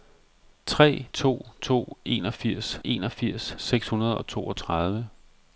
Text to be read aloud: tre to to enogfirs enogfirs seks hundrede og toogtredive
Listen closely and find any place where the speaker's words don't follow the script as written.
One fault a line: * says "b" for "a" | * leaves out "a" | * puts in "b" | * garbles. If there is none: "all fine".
all fine